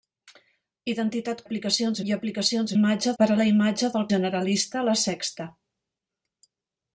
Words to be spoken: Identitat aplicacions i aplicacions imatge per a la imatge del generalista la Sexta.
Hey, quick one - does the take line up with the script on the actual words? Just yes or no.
yes